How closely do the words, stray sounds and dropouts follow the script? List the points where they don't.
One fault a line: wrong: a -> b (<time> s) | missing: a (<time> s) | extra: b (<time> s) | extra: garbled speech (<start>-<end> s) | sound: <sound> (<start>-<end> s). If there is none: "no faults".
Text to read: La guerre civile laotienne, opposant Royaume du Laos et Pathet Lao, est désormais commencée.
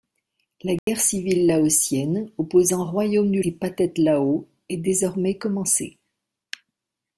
sound: dropout (0.8-0.9 s)
missing: Laos (3.4 s)